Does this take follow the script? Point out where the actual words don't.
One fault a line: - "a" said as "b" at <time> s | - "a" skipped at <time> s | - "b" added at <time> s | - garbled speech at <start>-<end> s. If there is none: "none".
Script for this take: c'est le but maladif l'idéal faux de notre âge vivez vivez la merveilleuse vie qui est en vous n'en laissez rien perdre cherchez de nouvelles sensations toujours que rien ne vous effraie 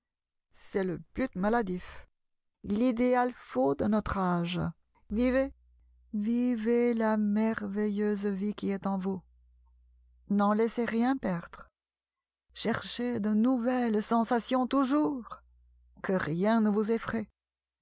none